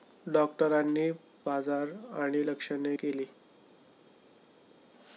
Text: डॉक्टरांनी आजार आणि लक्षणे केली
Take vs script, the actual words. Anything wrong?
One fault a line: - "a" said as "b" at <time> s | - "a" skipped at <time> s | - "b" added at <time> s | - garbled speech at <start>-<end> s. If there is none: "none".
none